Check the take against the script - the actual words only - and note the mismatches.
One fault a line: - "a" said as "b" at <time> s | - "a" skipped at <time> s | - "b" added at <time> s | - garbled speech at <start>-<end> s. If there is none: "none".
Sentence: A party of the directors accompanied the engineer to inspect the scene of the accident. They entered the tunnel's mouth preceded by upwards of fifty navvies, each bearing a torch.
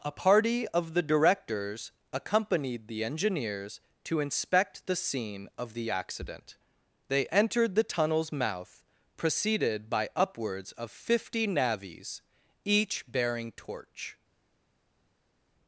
- "engineer" said as "engineers" at 3.0 s
- "a" skipped at 13.5 s